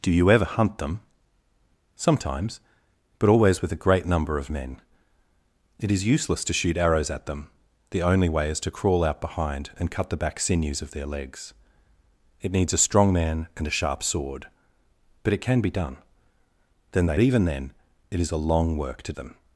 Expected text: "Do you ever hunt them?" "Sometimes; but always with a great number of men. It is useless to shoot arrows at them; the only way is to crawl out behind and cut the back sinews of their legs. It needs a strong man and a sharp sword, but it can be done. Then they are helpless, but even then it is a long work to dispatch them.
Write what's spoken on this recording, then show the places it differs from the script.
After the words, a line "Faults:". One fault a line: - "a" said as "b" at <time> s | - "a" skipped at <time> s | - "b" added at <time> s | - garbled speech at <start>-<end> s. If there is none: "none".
"Do you ever hunt them?" "Sometimes; but always with a great number of men. It is useless to shoot arrows at them; the only way is to crawl out behind and cut the back sinews of their legs. It needs a strong man and a sharp sword, but it can be done. Then they even then it is a long work to them.
Faults:
- "are helpless but" skipped at 17.2 s
- "dispatch" skipped at 19.1 s